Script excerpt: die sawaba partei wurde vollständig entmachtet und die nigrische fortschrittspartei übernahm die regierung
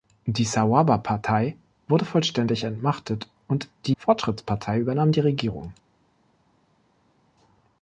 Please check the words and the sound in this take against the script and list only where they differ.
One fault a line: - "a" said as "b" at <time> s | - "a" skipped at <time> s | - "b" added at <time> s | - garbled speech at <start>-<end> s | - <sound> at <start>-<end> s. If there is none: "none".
- "nigrische" skipped at 3.9 s